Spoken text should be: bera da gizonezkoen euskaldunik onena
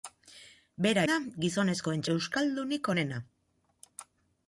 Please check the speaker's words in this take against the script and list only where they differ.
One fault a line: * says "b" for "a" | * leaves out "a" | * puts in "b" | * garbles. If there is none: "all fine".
all fine